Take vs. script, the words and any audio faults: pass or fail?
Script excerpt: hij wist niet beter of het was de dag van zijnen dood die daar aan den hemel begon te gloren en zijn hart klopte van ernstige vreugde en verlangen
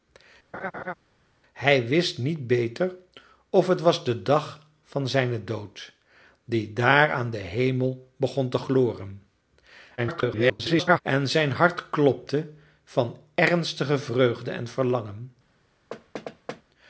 fail